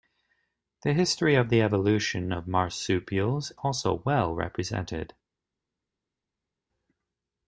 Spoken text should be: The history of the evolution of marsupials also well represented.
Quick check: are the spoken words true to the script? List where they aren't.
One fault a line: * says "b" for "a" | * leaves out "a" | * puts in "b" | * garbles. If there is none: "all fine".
all fine